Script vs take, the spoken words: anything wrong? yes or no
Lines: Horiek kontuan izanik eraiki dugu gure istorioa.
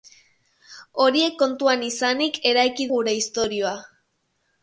yes